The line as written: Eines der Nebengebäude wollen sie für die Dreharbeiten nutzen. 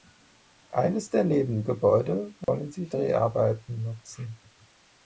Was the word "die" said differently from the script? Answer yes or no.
yes